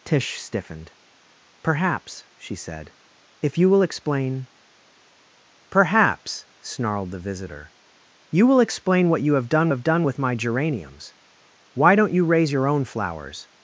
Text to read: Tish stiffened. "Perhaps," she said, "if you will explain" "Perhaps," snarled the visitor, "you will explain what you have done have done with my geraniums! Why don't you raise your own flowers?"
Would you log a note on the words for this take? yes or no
no